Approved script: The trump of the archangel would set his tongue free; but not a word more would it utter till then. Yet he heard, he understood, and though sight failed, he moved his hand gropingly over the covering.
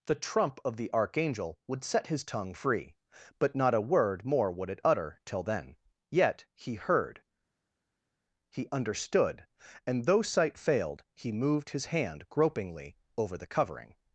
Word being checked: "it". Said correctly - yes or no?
yes